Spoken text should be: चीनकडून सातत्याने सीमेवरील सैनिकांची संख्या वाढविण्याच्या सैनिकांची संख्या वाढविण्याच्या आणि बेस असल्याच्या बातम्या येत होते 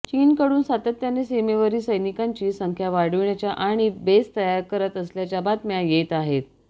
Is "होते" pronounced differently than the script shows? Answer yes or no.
yes